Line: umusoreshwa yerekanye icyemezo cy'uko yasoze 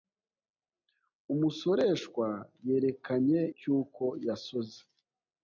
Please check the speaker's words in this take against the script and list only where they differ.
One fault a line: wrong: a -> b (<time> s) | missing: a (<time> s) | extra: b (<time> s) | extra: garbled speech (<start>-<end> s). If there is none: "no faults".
missing: icyemezo (3.4 s)